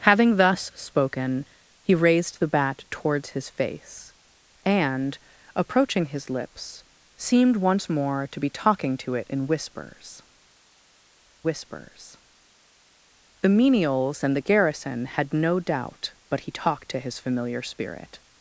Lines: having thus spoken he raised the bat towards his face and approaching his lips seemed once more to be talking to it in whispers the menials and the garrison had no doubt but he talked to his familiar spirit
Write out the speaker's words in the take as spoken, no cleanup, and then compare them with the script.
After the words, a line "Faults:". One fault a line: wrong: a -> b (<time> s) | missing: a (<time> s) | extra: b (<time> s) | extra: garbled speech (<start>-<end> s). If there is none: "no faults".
having thus spoken he raised the bat towards his face and approaching his lips seemed once more to be talking to it in whispers whispers the menials and the garrison had no doubt but he talked to his familiar spirit
Faults:
extra: whispers (11.4 s)